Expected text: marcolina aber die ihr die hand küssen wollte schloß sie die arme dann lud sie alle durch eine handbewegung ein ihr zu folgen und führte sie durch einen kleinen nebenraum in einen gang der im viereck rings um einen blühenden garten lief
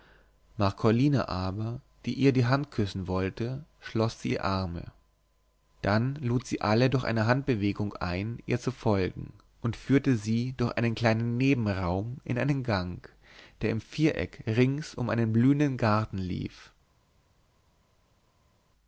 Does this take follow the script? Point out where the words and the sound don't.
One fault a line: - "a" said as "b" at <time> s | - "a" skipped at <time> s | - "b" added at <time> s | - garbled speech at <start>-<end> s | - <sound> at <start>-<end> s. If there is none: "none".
none